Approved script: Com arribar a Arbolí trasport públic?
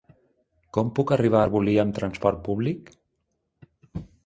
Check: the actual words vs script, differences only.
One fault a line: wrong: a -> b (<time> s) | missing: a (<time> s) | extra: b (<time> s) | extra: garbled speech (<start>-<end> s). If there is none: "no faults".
extra: puc (1.0 s)
extra: amb (1.9 s)